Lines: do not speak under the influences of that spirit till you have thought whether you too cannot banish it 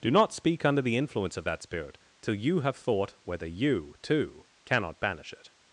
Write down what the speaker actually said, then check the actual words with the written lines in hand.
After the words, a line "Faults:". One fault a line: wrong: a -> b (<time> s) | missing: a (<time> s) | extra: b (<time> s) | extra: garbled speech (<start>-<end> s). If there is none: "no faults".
do not speak under the influence of that spirit till you have thought whether you too cannot banish it
Faults:
wrong: influences -> influence (1.0 s)